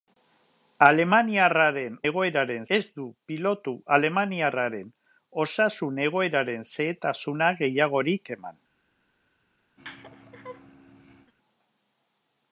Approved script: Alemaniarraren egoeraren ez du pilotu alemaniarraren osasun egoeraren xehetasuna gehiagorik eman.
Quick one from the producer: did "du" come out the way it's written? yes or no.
yes